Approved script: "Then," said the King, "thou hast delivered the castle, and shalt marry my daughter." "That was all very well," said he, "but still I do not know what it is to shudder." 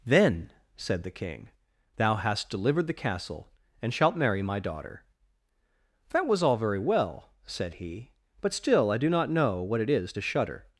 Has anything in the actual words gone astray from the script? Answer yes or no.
no